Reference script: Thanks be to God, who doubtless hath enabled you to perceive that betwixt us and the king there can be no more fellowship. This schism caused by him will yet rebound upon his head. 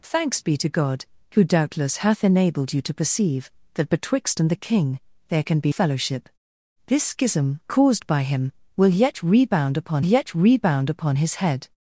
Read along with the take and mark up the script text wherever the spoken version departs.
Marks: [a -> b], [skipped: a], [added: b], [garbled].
Thanks be to God, who doubtless hath enabled you to perceive that betwixt [skipped: us] and the king there can be [skipped: no more] fellowship. This schism caused by him will yet rebound upon [added: yet rebound upon] his head.